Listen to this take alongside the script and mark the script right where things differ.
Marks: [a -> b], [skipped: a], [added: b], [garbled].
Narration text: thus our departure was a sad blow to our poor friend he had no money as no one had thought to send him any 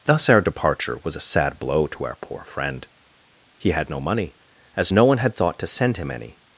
thus our departure was a sad blow to our poor friend he had no money as no one had thought to send him any